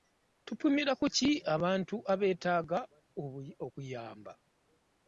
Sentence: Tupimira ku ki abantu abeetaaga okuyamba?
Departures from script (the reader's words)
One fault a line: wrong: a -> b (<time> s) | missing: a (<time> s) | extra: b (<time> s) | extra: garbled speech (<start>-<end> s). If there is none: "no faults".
no faults